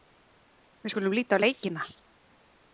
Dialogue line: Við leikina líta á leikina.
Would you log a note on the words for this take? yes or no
yes